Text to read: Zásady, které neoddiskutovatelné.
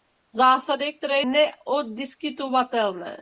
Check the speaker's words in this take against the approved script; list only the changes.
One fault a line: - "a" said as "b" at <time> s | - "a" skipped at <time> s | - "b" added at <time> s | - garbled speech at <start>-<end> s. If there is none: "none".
none